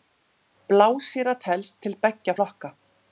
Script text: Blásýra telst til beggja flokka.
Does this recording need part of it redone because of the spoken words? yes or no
no